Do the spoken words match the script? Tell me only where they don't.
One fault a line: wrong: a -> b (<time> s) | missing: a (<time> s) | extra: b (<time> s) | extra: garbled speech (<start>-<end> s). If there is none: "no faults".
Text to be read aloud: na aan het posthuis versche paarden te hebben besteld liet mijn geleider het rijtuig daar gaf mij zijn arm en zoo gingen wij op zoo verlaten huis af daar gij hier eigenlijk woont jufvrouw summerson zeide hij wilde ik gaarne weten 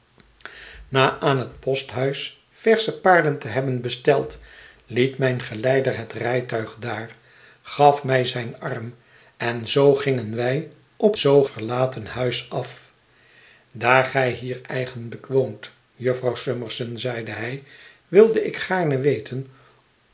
no faults